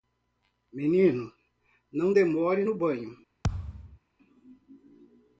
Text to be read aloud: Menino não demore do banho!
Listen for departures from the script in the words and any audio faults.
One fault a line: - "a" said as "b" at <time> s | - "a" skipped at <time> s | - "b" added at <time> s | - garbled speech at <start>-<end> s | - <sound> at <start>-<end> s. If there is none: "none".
- "do" said as "no" at 2.6 s
- thud at 3.4-4.0 s